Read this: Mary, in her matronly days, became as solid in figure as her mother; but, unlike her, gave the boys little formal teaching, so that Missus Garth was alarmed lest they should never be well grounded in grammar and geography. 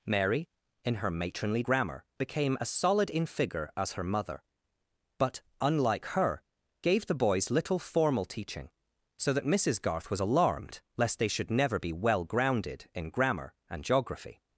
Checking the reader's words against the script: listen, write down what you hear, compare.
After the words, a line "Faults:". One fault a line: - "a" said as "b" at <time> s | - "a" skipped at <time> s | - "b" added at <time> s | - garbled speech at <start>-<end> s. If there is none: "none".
Mary, in her matronly grammar, became as solid in figure as her mother; but, unlike her, gave the boys little formal teaching, so that Missus Garth was alarmed lest they should never be well grounded in grammar and geography.
Faults:
- "days" said as "grammar" at 1.6 s